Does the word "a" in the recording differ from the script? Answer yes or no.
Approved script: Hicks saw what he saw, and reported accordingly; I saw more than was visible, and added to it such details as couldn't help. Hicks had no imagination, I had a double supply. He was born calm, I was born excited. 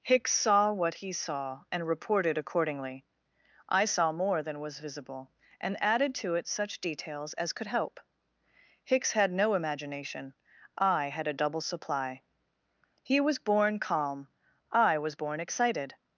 no